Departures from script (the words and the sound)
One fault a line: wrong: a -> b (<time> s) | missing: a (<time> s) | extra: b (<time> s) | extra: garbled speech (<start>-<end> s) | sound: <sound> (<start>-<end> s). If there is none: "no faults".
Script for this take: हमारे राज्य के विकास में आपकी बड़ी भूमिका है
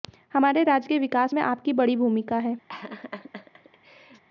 sound: laugh (2.7-4.2 s)